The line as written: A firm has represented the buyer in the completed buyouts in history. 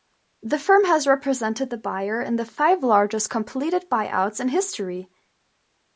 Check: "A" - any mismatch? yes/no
yes